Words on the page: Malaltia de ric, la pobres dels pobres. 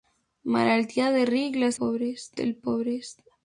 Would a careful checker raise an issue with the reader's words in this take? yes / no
no